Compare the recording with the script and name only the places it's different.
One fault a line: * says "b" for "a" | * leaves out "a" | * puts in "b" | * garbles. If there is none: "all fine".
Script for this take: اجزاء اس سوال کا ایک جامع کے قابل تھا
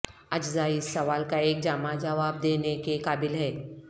* puts in "جواب دینے"
* says "ہے" for "تھا"